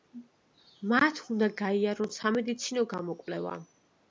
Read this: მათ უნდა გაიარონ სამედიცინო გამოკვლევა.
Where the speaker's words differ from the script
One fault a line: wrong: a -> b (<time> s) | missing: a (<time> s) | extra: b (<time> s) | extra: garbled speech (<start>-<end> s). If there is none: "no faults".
no faults